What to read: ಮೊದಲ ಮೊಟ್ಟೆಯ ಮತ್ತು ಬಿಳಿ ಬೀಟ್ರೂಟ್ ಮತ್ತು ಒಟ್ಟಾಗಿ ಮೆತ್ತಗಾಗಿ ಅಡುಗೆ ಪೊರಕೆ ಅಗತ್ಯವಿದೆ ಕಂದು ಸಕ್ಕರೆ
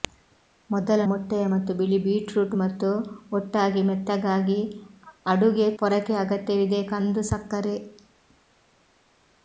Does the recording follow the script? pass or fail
pass